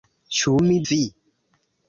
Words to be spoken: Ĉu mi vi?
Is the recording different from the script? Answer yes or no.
no